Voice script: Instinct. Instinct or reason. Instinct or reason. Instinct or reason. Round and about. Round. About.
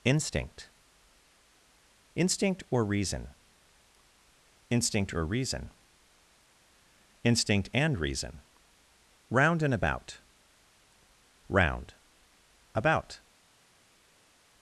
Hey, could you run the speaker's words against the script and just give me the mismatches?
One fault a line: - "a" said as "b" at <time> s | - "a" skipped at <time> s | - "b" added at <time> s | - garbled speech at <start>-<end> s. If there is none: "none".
- "or" said as "and" at 7.7 s